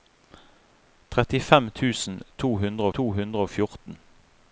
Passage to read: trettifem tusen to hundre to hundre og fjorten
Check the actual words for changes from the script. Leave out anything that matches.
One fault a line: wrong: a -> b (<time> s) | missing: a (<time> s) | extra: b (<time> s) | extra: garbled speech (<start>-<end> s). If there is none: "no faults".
no faults